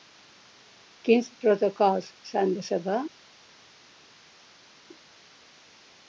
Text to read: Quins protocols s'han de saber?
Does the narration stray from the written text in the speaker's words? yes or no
no